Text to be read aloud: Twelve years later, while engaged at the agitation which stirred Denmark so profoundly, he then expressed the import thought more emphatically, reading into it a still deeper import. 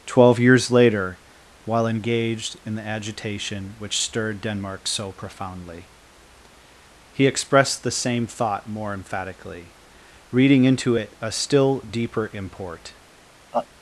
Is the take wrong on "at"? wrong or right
wrong